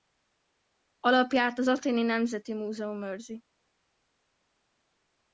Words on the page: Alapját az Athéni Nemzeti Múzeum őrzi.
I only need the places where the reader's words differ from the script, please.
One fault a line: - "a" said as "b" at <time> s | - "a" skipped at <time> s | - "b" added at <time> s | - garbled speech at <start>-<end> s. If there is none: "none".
none